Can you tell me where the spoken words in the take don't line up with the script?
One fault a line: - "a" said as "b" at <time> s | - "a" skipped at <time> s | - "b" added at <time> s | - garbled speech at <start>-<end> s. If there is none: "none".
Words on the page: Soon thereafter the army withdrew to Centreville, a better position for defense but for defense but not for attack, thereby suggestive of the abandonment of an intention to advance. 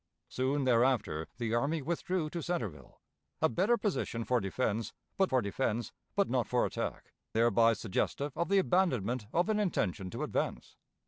none